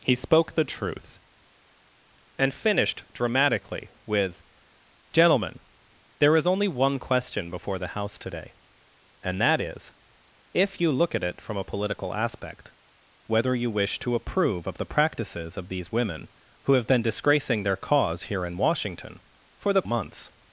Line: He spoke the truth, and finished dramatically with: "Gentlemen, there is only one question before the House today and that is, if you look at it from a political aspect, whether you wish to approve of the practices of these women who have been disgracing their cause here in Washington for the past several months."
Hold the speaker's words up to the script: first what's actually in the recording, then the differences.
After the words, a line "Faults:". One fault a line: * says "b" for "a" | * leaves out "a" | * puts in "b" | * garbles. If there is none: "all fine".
He spoke the truth, and finished dramatically with: "Gentlemen, there is only one question before the House today and that is, if you look at it from a political aspect, whether you wish to approve of the practices of these women who have been disgracing their cause here in Washington for the months."
Faults:
* leaves out "past several"